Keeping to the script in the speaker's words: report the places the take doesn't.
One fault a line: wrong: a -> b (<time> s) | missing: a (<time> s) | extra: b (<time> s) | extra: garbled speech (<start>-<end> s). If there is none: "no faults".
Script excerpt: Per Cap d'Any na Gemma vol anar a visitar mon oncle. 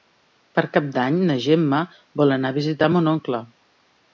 no faults